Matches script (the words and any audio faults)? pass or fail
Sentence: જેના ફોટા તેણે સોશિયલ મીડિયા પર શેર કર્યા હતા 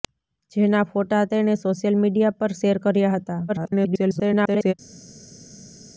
fail